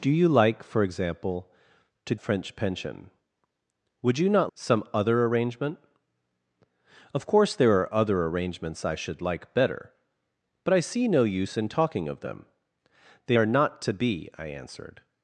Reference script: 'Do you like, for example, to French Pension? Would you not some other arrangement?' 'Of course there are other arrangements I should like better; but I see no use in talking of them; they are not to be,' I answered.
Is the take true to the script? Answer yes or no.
yes